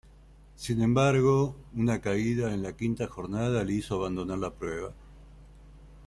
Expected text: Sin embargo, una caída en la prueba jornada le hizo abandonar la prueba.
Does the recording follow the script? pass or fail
fail